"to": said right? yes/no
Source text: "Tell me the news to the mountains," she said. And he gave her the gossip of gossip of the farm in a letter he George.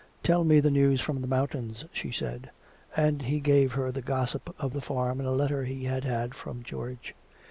no